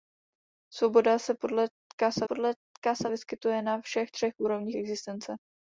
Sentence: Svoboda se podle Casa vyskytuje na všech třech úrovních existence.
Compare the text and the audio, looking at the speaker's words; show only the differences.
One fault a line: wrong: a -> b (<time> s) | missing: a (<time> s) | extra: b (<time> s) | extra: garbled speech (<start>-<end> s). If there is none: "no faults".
extra: podle Casa (2.2 s)